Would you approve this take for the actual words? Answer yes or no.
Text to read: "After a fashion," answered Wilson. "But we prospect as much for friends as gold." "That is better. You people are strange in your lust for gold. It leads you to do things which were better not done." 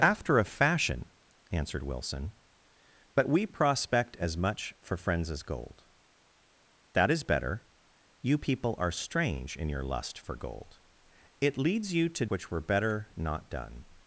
no